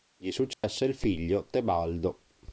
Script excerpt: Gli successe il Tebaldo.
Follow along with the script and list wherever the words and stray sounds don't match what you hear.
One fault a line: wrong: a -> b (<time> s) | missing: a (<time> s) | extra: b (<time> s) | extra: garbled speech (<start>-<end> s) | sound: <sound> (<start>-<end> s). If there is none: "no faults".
sound: dropout (0.5-0.6 s)
extra: figlio (0.9 s)